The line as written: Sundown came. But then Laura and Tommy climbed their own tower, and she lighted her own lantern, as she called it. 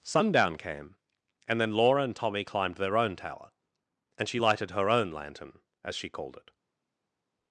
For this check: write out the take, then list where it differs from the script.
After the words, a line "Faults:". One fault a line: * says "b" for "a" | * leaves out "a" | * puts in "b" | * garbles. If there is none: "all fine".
Sundown came. And then Laura and Tommy climbed their own tower, and she lighted her own lantern, as she called it.
Faults:
* says "And" for "But"